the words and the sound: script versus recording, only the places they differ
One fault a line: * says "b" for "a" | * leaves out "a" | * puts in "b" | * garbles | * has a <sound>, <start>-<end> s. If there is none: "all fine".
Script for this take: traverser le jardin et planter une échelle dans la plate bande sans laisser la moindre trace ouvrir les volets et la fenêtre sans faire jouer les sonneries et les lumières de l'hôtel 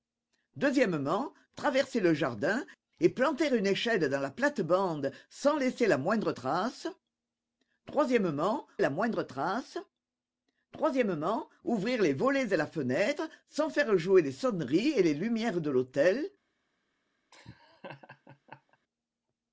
* puts in "la moindre trace"
* has a laugh, 17.3-18.8 s